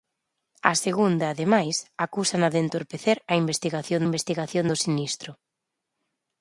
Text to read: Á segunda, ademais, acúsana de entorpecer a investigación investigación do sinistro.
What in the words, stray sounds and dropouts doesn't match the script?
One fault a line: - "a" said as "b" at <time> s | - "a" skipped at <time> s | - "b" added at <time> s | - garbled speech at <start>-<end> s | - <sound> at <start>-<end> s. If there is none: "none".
none